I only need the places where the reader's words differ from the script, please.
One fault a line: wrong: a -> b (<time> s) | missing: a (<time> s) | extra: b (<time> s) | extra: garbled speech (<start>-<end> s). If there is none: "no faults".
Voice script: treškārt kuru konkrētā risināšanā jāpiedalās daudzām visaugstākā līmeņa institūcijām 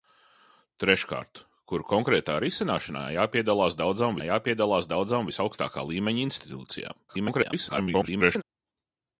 extra: jāpiedalās daudzām (4.3 s)
extra: garbled speech (7.1-8.4 s)